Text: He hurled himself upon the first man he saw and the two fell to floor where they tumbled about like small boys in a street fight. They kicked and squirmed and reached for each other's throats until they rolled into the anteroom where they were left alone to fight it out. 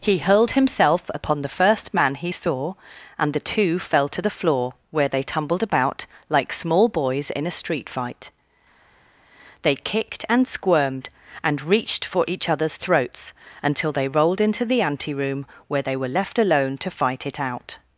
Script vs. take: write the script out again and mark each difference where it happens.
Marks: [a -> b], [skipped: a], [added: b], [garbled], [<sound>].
He hurled himself upon the first man he saw and the two fell to [added: the] floor where they tumbled about like small boys in a street fight. They kicked and squirmed and reached for each other's throats until they rolled into the anteroom where they were left alone to fight it out.